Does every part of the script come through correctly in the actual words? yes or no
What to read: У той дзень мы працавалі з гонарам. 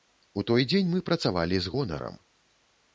yes